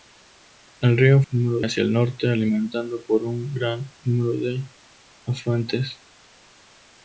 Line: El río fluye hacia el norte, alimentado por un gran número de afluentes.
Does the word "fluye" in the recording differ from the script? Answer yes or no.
yes